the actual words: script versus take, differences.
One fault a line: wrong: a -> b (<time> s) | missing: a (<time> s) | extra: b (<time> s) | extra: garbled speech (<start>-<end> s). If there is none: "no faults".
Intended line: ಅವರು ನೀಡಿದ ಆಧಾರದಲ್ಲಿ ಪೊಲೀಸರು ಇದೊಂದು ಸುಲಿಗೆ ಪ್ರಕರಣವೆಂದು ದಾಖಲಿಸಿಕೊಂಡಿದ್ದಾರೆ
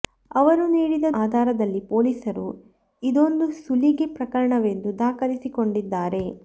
no faults